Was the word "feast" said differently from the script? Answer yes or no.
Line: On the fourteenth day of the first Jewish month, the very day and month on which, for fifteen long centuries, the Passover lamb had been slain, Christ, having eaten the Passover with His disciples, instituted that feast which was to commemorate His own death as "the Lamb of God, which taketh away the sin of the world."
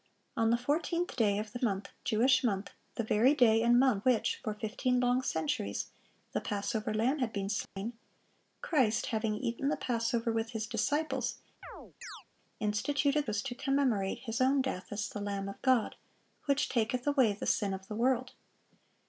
yes